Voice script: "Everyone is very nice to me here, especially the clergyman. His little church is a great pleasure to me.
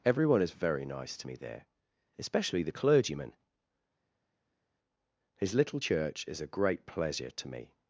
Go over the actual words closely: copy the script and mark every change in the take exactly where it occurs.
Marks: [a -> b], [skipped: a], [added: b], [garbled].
"Everyone is very nice to me [here, -> there] especially the clergyman. His little church is a great pleasure to me.